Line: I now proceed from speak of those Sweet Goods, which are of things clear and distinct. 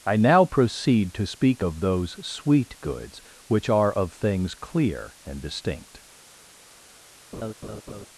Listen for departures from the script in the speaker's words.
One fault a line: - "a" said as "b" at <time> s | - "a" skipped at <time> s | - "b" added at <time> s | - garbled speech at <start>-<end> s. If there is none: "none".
- "from" said as "to" at 1.1 s